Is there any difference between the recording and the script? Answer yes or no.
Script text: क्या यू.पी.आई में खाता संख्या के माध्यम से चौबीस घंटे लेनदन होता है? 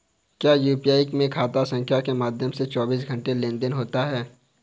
no